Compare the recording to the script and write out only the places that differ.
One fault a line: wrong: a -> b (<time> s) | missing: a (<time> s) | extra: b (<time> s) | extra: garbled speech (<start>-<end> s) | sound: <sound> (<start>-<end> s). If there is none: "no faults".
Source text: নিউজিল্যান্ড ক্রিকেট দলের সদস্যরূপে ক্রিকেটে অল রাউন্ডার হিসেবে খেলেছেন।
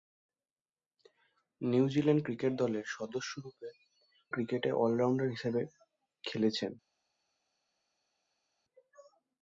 no faults